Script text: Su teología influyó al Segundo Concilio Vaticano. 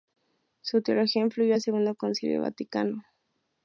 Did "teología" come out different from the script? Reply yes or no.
no